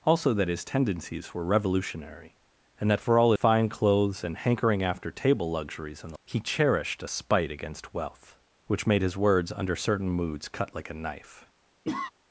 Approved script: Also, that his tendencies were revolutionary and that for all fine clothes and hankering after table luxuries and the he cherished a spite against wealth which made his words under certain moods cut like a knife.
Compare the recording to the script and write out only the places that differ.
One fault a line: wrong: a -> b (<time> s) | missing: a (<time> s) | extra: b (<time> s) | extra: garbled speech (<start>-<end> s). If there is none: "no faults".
no faults